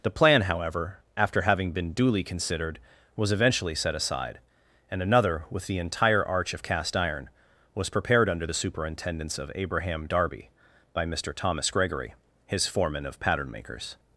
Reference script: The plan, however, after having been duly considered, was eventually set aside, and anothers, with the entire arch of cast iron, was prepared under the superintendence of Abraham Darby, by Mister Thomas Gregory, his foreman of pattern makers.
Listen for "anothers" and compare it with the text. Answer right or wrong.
wrong